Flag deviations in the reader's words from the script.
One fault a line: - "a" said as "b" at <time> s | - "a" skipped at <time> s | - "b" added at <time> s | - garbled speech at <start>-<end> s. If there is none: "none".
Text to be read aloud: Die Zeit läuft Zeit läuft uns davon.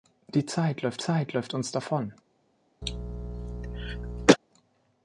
none